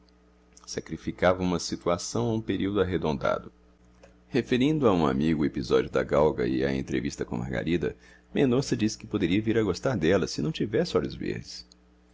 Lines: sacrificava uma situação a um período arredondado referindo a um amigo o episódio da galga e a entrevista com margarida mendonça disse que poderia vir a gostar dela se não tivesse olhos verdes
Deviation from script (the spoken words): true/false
false